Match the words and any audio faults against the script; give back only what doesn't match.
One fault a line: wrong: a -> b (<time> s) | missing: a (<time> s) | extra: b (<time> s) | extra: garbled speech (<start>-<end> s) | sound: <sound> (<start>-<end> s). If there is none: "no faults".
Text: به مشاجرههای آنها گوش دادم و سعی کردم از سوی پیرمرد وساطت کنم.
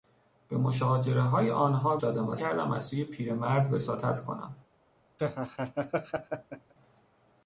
missing: گوش (2.0 s)
missing: سعی (2.4 s)
sound: laugh (5.2-6.7 s)